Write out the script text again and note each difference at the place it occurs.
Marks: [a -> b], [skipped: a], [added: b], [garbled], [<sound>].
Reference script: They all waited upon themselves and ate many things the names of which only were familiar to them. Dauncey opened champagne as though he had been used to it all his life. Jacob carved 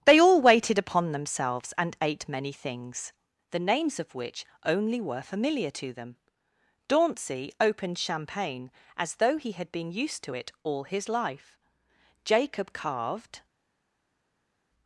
They all waited upon themselves and ate many things the names of which only were familiar to them. Dauncey opened champagne as though he had been used to it all his life. Jacob carved